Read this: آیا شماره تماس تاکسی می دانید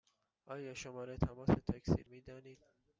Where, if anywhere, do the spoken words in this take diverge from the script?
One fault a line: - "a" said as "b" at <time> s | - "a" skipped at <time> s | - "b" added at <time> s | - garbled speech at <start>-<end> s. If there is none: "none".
none